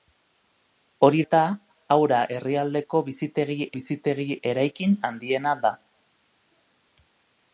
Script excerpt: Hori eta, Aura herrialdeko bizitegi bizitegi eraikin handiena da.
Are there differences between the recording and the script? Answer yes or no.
no